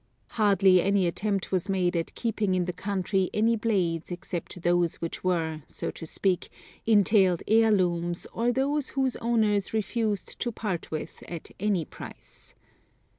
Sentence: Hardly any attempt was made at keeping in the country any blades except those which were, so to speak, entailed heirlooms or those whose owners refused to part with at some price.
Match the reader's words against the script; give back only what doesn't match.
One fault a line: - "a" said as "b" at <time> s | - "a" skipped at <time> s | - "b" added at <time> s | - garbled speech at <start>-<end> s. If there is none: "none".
- "some" said as "any" at 11.6 s